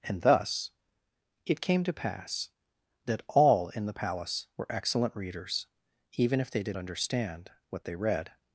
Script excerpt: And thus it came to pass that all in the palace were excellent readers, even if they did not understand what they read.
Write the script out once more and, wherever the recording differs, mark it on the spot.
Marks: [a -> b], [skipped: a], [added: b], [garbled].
And thus it came to pass that all in the palace were excellent readers, even if they did [skipped: not] understand what they read.